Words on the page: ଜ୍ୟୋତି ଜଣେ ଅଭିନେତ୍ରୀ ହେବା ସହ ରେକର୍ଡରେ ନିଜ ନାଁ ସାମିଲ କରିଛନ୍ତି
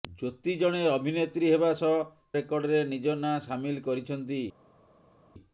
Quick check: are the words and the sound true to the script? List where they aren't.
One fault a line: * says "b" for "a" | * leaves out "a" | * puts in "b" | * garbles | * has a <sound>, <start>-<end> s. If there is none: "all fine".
all fine